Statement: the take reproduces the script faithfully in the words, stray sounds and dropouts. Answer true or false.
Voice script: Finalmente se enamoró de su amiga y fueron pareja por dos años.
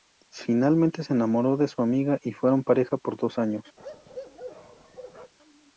false